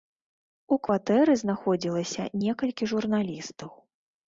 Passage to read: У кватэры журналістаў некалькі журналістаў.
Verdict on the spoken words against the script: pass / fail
fail